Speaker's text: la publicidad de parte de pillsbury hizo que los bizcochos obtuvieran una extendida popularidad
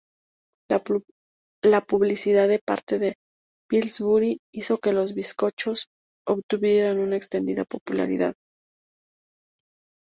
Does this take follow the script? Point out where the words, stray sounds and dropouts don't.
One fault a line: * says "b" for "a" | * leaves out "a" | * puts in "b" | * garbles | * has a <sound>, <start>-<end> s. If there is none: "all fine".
all fine